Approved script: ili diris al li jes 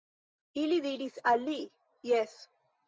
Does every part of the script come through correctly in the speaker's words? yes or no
yes